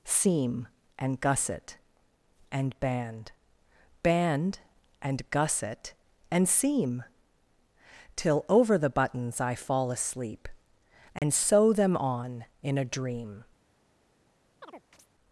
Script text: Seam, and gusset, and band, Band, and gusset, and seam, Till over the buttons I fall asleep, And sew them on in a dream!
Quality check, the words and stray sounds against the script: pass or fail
fail